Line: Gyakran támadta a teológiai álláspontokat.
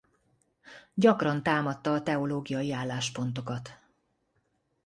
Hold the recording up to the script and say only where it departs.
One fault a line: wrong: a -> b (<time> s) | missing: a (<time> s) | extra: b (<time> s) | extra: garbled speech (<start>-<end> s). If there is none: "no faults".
no faults